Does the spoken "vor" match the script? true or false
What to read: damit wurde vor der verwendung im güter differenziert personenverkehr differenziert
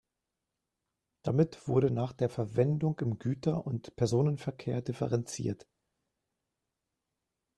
false